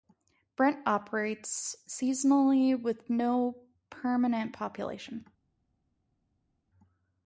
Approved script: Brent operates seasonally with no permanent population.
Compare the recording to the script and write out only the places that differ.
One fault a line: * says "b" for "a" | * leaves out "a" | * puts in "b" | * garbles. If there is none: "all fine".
all fine